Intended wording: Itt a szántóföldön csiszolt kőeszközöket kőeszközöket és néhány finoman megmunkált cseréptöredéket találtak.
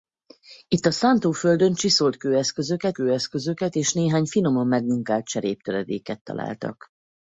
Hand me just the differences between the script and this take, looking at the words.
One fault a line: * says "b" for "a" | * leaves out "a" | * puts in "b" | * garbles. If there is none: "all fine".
all fine